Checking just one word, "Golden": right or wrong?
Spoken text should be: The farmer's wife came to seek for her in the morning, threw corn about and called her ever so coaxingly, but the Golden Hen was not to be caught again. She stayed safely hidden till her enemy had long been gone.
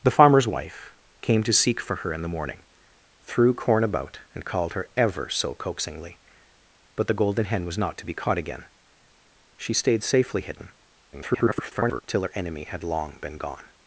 right